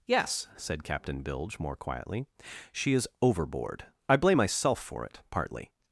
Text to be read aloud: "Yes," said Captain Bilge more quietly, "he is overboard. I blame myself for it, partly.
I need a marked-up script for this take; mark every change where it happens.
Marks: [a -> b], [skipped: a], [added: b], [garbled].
"Yes," said Captain Bilge more quietly, ["he -> she] is overboard. I blame myself for it, partly.